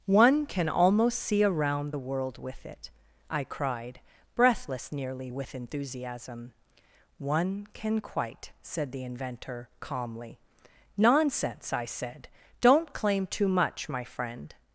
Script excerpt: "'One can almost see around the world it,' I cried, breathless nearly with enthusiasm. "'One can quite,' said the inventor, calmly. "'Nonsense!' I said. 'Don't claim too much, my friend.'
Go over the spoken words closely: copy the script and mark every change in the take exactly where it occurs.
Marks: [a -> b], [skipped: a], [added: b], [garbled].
"'One can almost see around the world [added: with] it,' I cried, breathless nearly with enthusiasm. "'One can quite,' said the inventor, calmly. "'Nonsense!' I said. 'Don't claim too much, my friend.'